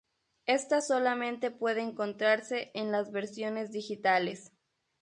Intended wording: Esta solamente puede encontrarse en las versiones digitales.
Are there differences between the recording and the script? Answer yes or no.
no